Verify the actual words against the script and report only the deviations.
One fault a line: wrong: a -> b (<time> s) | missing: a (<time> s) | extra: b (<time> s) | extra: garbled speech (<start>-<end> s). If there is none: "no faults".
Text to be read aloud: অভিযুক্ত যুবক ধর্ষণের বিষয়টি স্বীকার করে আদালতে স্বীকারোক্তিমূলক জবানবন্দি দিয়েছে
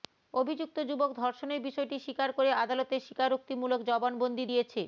no faults